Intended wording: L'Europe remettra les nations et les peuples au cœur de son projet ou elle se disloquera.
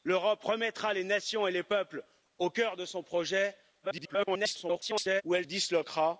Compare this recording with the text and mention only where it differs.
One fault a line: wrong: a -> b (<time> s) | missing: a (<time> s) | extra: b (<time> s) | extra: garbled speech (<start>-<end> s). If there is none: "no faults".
extra: garbled speech (3.8-5.2 s)
missing: se (5.5 s)